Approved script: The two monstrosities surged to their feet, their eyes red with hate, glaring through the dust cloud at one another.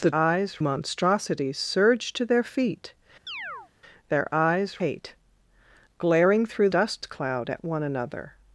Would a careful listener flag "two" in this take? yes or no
yes